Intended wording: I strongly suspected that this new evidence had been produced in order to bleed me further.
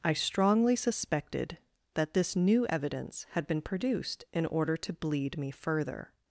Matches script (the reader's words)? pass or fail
pass